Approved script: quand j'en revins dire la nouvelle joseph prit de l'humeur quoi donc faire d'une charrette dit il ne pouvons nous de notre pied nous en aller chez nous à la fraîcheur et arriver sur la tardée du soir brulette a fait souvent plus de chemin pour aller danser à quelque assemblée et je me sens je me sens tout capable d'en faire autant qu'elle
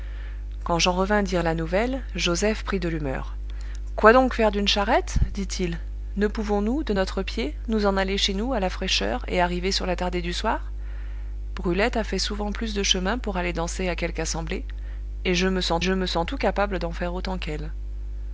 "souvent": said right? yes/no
yes